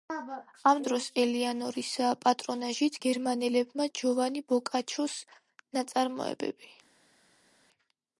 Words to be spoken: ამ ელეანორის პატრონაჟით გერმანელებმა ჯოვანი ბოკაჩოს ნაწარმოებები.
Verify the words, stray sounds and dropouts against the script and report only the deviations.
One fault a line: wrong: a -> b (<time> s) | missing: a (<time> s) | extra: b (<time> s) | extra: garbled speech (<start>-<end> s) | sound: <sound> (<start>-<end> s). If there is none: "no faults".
extra: დროს (0.8 s)